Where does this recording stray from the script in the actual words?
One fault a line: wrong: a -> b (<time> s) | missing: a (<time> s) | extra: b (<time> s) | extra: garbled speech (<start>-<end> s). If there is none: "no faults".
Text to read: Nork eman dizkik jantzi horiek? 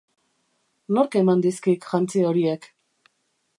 no faults